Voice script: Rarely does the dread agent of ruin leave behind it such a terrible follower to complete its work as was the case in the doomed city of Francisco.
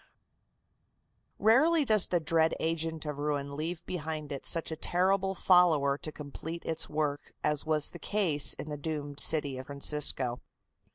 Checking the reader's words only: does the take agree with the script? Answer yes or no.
yes